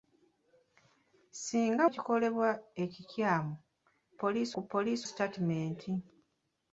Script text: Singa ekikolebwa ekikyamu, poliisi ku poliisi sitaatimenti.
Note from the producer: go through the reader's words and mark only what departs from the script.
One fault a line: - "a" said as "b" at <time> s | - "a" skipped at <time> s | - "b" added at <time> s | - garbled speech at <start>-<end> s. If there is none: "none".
none